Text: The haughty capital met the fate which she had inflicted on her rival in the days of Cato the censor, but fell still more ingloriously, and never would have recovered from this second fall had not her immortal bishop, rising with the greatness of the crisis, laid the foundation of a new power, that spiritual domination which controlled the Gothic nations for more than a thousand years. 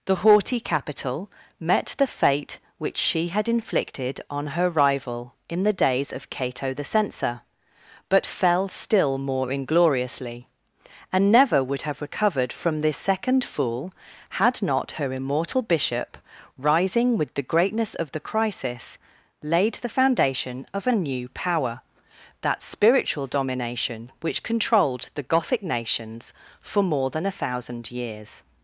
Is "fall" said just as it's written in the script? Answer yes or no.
no